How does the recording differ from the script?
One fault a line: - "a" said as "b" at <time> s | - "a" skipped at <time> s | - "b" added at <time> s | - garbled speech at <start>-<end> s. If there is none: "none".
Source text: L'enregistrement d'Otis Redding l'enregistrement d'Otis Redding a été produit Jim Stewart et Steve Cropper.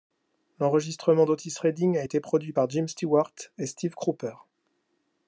- "l'enregistrement d'Otis Redding" skipped at 1.9 s
- "par" added at 2.5 s